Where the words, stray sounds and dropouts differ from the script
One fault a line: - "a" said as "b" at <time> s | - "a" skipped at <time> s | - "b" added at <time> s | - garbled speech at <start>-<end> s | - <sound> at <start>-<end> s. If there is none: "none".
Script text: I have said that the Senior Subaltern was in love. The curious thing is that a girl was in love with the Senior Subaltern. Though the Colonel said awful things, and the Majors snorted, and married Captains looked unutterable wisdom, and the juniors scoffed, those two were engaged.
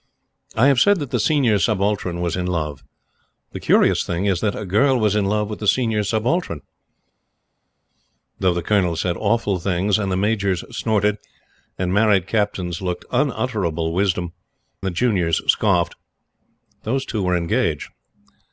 - "and" skipped at 14.3 s